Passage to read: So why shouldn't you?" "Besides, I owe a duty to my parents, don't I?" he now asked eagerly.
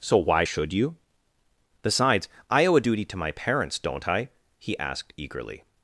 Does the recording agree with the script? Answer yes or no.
no